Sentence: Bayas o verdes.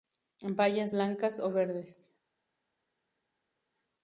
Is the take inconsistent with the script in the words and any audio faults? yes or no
yes